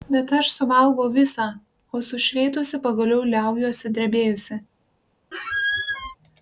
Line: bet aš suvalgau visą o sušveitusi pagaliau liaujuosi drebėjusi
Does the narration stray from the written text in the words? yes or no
no